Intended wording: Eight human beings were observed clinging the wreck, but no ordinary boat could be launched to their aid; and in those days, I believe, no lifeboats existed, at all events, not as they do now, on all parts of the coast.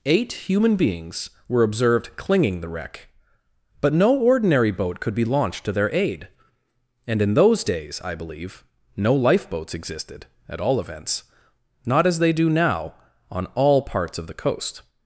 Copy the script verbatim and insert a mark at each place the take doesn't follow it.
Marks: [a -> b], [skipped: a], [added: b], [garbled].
Eight human beings were observed clinging the wreck, but no ordinary boat could be launched to their aid; and in those days, I believe, no lifeboats existed, at all events, not as they do now, on all parts of the coast.